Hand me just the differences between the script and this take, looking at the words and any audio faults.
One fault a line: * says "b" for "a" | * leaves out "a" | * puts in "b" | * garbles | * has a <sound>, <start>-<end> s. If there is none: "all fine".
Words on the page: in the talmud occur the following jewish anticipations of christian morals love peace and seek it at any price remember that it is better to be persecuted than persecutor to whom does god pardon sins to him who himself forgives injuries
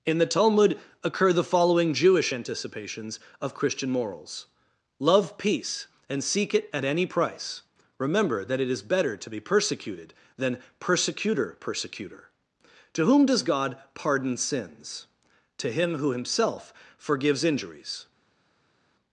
* puts in "persecutor"